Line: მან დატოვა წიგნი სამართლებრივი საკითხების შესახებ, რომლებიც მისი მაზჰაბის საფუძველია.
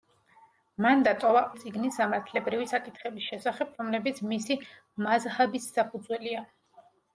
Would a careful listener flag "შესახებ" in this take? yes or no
no